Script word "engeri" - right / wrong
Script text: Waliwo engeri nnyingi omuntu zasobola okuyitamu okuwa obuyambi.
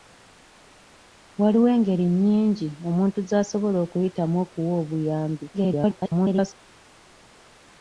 right